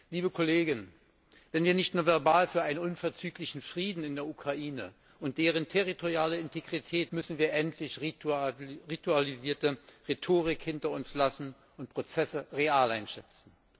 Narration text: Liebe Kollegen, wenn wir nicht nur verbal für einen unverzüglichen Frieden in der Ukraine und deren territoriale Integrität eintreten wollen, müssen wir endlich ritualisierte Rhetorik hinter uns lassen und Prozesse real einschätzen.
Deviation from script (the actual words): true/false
true